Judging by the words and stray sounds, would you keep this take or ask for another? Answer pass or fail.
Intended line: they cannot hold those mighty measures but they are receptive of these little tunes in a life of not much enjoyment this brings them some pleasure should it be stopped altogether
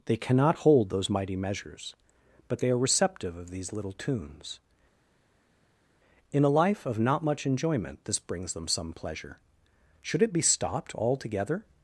pass